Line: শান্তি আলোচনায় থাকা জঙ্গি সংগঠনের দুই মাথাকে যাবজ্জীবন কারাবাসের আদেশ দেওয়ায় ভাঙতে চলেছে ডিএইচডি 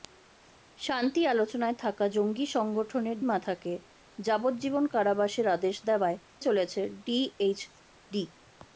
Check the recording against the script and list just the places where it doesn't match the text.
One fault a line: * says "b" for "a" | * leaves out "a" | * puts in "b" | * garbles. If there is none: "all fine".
* leaves out "দুই"
* leaves out "ভাঙতে"